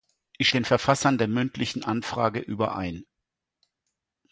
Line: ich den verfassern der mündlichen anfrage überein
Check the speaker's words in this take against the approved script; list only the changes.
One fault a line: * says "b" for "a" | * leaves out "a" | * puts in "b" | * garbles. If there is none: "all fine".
all fine